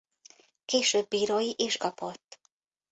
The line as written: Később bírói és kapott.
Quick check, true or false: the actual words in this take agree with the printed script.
true